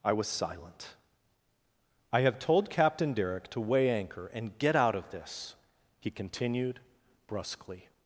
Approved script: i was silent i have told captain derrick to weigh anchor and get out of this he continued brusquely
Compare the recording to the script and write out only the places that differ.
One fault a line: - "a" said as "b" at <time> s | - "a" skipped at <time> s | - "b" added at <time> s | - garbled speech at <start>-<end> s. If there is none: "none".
none